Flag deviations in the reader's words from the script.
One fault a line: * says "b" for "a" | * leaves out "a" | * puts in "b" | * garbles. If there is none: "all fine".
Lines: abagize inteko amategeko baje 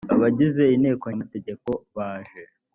all fine